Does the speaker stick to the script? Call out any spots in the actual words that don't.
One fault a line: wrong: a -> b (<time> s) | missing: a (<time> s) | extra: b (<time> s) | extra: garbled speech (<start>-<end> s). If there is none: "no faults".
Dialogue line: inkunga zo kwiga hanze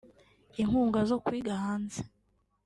no faults